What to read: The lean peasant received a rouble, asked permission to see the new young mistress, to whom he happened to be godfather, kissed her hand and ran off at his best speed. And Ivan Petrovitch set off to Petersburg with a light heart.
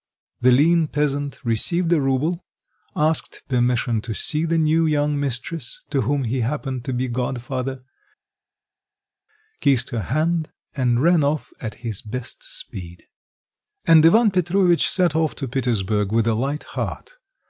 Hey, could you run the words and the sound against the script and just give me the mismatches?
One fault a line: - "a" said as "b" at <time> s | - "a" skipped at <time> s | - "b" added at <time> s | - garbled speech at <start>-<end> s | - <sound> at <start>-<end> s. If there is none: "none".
none